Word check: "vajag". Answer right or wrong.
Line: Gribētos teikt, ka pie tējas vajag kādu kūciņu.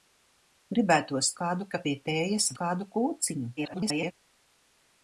wrong